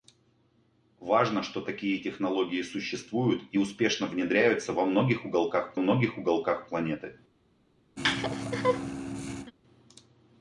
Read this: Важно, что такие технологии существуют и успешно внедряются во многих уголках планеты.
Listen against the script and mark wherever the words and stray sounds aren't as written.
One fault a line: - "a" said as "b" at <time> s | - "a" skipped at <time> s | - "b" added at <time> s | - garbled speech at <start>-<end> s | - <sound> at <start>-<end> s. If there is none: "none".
- "многих уголках" added at 5.8 s
- laugh at 8.0-9.5 s